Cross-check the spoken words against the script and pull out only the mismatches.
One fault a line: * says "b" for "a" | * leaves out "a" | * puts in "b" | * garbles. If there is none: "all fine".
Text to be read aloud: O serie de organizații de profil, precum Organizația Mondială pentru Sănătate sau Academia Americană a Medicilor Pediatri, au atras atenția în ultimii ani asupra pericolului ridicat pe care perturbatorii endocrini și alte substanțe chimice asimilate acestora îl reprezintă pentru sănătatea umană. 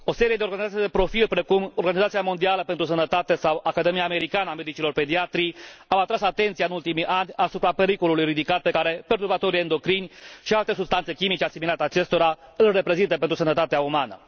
all fine